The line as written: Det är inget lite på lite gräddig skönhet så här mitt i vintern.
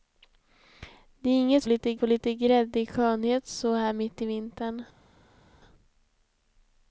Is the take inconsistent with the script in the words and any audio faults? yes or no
no